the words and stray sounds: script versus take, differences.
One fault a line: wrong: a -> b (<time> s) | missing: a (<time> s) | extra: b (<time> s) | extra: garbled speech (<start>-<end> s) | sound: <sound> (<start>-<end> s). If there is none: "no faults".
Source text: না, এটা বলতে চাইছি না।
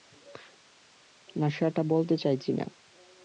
wrong: এটা -> সেটা (1.5 s)